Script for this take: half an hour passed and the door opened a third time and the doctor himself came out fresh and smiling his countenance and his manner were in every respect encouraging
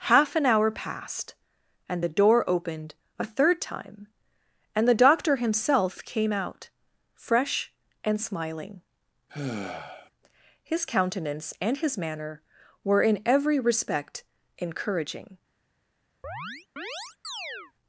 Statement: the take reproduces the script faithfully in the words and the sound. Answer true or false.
false